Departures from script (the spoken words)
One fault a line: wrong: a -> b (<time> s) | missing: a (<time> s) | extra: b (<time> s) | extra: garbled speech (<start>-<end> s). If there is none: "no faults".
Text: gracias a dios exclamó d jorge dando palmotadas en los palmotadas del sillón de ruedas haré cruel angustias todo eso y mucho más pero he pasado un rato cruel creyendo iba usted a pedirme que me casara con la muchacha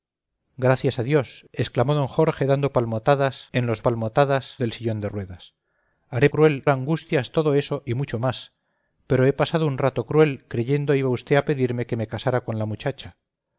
no faults